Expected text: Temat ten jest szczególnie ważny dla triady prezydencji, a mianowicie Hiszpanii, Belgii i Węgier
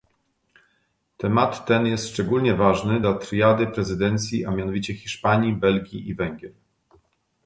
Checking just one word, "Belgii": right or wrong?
right